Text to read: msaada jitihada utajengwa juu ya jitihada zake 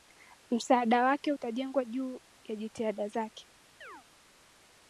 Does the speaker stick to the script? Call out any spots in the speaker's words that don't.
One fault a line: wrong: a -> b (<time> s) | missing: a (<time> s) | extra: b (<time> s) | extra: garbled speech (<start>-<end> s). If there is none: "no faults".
wrong: jitihada -> wake (1.0 s)